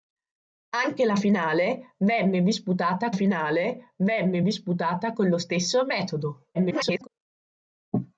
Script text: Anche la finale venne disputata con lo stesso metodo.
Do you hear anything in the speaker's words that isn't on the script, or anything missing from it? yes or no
yes